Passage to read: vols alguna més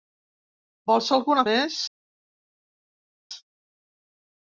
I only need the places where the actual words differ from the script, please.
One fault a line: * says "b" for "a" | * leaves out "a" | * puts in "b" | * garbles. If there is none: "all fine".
all fine